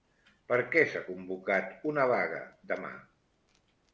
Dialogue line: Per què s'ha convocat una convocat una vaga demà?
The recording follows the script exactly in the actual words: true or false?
false